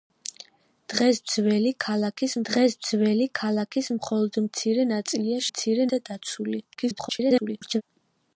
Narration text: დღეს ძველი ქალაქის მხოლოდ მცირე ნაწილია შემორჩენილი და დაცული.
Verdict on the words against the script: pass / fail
fail